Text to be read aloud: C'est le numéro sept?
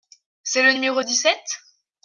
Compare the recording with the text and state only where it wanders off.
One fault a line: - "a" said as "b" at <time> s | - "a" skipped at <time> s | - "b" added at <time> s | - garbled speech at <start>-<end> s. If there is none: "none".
- "dix" added at 1.0 s